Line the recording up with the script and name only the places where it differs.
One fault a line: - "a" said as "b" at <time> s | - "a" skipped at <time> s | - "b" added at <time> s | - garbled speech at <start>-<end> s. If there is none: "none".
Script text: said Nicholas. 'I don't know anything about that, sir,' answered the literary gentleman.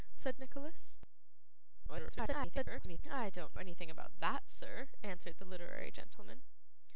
- garbled speech at 1.9-3.0 s
- "know" skipped at 3.5 s